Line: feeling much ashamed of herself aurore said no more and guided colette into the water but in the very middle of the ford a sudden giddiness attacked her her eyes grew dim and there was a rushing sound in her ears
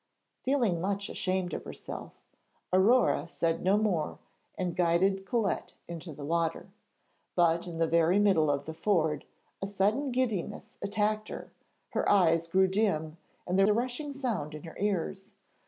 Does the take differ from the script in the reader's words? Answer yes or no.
yes